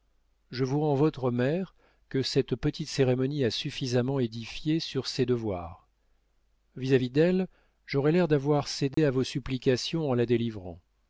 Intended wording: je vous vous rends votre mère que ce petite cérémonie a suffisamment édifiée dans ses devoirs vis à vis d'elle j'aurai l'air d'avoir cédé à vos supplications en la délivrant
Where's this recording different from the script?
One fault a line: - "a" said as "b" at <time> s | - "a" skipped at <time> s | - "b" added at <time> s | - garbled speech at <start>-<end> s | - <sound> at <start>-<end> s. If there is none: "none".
- "vous" skipped at 0.8 s
- "ce" said as "cette" at 2.2 s
- "dans" said as "sur" at 4.8 s
- dropout at 8.9-9.0 s